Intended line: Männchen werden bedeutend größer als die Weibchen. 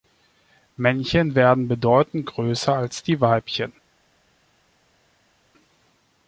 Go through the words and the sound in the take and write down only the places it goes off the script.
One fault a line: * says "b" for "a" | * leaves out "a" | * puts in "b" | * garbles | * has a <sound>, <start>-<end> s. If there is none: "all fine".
all fine